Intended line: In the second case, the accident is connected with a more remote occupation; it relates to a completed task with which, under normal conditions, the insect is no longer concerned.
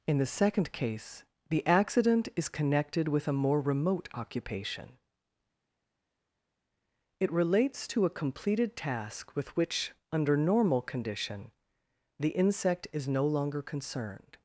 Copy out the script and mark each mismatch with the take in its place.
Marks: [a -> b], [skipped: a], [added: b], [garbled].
In the second case, the accident is connected with a more remote occupation; it relates to a completed task with which, under normal [conditions, -> condition] the insect is no longer concerned.